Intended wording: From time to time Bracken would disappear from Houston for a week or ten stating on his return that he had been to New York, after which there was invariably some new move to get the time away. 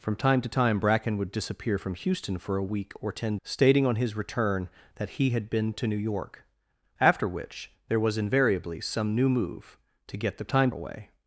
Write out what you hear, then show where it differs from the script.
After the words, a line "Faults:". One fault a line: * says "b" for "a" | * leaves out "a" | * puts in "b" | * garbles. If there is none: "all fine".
From time to time Bracken would disappear from Houston for a week or ten stating on his return that he had been to New York, after which there was invariably some new move to get the time away.
Faults:
all fine